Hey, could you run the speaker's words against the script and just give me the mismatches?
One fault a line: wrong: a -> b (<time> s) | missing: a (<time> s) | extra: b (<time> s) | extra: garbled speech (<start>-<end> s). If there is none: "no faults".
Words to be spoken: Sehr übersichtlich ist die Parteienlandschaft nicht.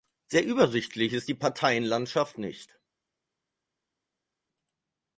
no faults